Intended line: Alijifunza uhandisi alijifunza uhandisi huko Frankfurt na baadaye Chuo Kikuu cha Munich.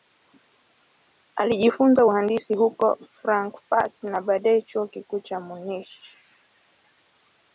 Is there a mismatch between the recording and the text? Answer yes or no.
yes